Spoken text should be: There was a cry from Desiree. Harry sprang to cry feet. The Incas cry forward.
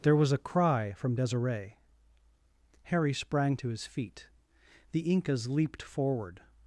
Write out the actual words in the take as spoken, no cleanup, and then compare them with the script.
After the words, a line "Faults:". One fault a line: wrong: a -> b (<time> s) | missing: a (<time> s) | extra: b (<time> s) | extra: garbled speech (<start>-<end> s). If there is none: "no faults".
There was a cry from Desiree. Harry sprang to his feet. The Incas leaped forward.
Faults:
wrong: cry -> his (3.7 s)
wrong: cry -> leaped (5.5 s)